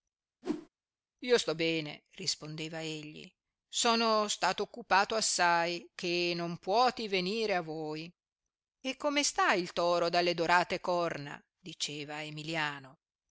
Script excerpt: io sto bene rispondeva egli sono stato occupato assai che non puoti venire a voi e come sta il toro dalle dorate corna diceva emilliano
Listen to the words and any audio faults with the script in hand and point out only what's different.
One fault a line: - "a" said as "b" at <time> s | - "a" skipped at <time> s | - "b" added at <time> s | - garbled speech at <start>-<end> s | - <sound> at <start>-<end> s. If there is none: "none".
- whoosh at 0.4-0.7 s